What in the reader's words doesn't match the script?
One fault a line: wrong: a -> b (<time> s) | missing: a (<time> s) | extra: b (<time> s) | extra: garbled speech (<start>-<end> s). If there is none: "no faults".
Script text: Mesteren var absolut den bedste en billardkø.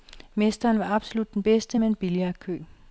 extra: med (1.8 s)